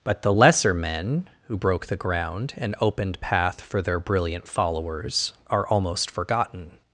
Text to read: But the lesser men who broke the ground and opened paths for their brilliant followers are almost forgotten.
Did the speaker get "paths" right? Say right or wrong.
wrong